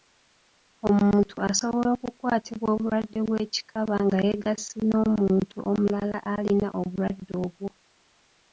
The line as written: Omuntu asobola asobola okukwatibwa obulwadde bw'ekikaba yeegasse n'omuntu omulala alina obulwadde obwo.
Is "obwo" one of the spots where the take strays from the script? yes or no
no